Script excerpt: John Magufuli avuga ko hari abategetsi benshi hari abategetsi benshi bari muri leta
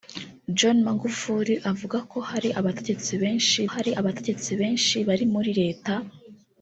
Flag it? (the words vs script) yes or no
no